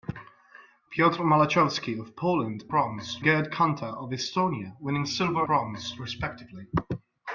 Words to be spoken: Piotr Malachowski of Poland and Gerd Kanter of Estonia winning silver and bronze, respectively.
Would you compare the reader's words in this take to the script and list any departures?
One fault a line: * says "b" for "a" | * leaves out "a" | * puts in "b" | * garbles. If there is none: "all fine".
* says "bronze" for "and"
* leaves out "and"